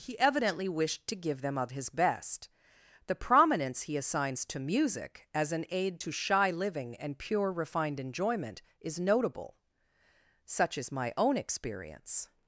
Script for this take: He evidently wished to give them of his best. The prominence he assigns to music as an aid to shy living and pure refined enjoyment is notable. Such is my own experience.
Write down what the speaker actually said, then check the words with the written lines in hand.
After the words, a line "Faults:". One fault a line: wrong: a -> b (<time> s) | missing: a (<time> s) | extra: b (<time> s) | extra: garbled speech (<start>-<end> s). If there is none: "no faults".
He evidently wished to give them of his best. The prominence he assigns to music as an aid to shy living and pure refined enjoyment is notable. Such is my own experience.
Faults:
no faults